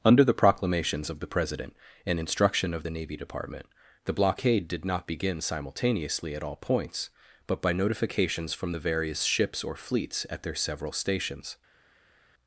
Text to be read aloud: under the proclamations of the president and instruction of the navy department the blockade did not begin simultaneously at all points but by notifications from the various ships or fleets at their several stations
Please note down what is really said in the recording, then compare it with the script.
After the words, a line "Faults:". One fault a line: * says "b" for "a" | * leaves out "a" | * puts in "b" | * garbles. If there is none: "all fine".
under the proclamations of the president and instruction of the navy department the blockade did not begin simultaneously at all points but by notifications from the various ships or fleets at their several stations
Faults:
all fine